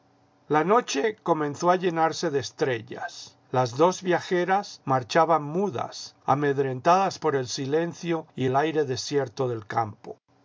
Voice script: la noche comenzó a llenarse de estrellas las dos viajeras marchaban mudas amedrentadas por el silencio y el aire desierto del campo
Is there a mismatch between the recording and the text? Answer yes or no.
no